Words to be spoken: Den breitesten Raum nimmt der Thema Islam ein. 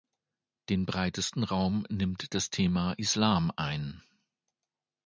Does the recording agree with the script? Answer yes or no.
no